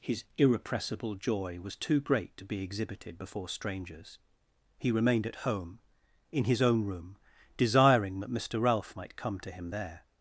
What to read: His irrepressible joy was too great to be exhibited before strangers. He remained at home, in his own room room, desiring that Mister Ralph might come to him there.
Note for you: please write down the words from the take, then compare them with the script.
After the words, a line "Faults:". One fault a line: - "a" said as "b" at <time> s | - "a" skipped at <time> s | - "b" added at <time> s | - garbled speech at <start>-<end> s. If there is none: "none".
His irrepressible joy was too great to be exhibited before strangers. He remained at home, in his own room, desiring that Mister Ralph might come to him there.
Faults:
- "room" skipped at 7.2 s